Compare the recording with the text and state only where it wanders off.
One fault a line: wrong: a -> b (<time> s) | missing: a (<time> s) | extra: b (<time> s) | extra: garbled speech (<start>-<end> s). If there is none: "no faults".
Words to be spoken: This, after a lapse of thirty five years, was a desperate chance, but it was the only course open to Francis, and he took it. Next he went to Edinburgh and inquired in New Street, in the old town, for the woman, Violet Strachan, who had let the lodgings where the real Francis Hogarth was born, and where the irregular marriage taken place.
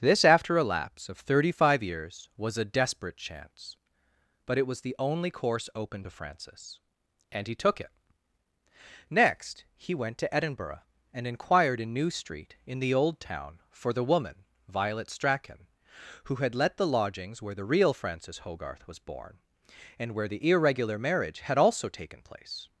extra: had also (21.4 s)